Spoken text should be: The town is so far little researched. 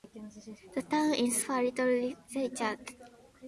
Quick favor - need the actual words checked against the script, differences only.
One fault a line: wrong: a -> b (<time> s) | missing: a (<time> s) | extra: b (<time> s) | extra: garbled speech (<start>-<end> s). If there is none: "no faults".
missing: so (1.4 s)